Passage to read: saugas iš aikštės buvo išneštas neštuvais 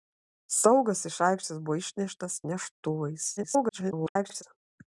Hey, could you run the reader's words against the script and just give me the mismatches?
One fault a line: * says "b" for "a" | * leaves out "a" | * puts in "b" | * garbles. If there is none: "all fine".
* garbles